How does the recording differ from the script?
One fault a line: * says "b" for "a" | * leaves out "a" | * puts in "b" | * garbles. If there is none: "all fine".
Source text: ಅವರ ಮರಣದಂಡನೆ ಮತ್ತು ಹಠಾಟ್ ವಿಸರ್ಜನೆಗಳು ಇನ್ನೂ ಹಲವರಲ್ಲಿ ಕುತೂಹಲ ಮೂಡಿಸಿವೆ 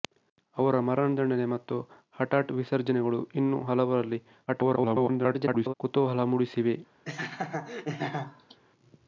* garbles